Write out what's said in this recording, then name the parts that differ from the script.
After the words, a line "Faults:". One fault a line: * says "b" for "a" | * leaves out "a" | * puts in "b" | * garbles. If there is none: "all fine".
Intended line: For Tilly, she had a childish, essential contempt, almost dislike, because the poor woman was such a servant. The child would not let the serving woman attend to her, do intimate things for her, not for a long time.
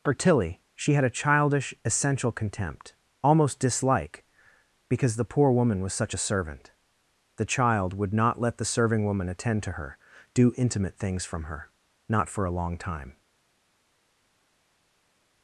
For Tilly, she had a childish, essential contempt, almost dislike, because the poor woman was such a servant. The child would not let the serving woman attend to her, do intimate things from her, not for a long time.
Faults:
* says "from" for "for"